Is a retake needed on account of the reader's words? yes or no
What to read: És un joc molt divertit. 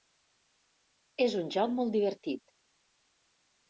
no